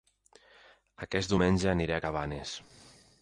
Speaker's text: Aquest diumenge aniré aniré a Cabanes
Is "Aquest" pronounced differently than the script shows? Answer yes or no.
no